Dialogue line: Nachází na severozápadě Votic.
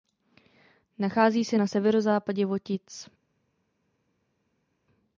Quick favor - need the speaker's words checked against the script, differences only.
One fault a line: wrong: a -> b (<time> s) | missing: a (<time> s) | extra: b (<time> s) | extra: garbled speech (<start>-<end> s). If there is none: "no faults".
extra: se (1.4 s)